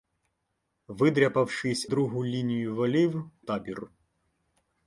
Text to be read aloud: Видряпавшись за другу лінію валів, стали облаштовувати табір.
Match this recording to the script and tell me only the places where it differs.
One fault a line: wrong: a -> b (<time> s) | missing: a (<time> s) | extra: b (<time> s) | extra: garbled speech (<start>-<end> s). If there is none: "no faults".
missing: за (1.9 s)
missing: стали облаштовувати (3.3 s)